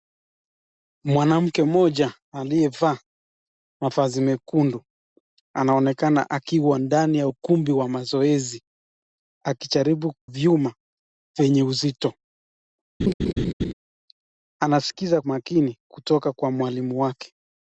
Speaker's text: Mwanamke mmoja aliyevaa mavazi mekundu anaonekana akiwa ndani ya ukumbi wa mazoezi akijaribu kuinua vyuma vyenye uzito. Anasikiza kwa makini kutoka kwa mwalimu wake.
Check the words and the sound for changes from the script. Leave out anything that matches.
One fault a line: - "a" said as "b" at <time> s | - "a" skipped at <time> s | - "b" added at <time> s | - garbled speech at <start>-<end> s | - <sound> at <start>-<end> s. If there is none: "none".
- "kuinua" skipped at 10.1 s
- laugh at 13.0-13.7 s
- "kwa" skipped at 15.2 s